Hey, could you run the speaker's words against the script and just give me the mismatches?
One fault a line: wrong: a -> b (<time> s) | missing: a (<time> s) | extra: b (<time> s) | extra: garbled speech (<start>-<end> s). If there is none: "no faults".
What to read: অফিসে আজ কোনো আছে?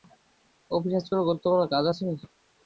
extra: গুরুত্বপূর্ণ কাজ (1.3 s)